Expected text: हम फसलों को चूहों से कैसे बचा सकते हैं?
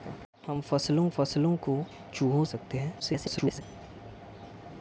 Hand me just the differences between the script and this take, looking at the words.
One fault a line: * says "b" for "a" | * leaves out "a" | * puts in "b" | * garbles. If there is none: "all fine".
* puts in "फसलों"
* leaves out "से कैसे बचा"
* garbles